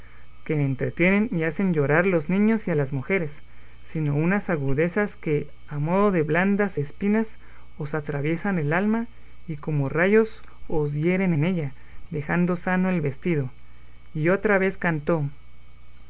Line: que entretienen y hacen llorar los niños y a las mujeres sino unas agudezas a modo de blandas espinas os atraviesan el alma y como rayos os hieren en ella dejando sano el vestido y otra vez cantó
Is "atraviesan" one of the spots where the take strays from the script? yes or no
no